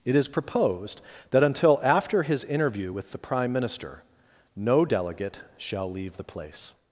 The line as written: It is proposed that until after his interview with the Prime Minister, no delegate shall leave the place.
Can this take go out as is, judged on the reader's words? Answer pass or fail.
pass